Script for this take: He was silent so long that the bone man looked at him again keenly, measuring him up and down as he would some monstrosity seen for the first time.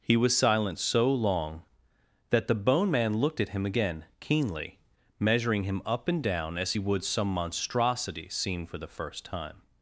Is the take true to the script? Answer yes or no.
yes